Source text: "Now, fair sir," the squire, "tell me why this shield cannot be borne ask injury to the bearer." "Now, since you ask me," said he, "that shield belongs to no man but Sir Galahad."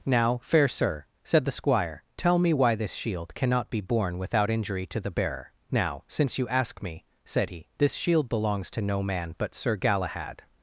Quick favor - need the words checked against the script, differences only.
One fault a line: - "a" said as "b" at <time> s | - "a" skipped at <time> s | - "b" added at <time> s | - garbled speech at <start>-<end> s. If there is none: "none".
- "said" added at 1.2 s
- "ask" said as "without" at 4.2 s
- "that" said as "this" at 7.8 s